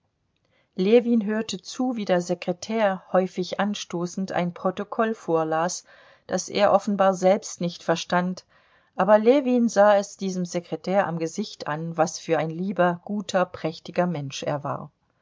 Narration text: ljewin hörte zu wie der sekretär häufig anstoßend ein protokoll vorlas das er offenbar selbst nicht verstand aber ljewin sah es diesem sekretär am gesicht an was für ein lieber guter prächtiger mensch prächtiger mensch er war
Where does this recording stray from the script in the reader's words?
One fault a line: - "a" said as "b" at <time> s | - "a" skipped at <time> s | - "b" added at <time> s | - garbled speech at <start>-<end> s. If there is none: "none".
- "prächtiger mensch" skipped at 14.4 s